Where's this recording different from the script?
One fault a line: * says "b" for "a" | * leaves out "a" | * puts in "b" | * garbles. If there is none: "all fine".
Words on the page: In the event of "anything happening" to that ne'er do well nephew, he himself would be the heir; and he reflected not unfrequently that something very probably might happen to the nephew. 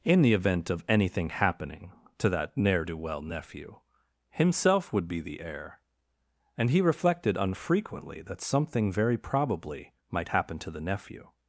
* leaves out "he"
* leaves out "not"